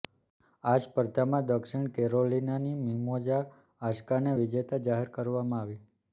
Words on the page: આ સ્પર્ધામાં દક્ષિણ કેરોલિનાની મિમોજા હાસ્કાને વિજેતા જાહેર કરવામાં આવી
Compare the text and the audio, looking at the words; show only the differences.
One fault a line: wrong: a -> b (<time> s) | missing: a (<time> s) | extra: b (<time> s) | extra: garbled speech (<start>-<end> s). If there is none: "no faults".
no faults